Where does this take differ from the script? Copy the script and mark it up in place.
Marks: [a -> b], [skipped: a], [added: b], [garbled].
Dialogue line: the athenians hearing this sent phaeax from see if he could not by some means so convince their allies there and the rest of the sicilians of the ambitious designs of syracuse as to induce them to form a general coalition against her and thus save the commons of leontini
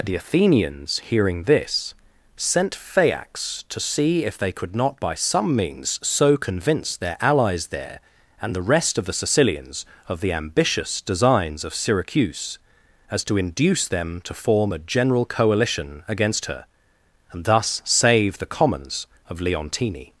the athenians hearing this sent phaeax [from -> to] see if [he -> they] could not by some means so convince their allies there and the rest of the sicilians of the ambitious designs of syracuse as to induce them to form a general coalition against her and thus save the commons of leontini